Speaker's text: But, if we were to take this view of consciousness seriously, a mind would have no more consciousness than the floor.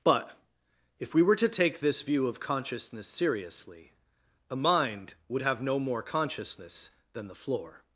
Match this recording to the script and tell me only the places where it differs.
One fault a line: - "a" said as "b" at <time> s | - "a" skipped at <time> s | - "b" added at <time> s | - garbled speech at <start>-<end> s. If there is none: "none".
none